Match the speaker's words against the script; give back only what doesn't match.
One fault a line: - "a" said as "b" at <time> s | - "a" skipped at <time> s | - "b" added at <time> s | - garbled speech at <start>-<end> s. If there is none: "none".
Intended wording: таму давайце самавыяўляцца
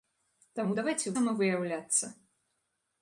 none